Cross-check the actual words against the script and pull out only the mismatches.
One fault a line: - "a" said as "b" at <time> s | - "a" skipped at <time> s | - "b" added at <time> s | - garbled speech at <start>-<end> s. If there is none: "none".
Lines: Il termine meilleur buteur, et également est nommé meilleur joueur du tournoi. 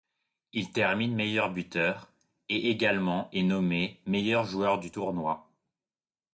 none